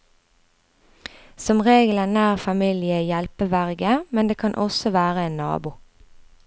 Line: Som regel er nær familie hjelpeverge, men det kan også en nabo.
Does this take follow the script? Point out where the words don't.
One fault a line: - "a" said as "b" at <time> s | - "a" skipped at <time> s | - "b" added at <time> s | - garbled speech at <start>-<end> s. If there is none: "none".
- "være" added at 5.0 s